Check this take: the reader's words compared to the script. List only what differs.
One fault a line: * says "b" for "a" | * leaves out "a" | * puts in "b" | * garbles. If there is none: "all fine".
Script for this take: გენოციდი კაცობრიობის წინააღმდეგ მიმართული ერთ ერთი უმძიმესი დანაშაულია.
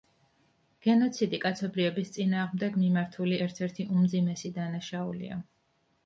all fine